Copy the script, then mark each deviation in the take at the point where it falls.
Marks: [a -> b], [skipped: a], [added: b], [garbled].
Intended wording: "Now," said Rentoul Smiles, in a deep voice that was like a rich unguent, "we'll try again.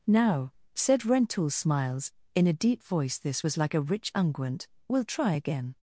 "Now," said Rentoul Smiles, in a deep voice [that -> this] was like a rich unguent, "we'll try again.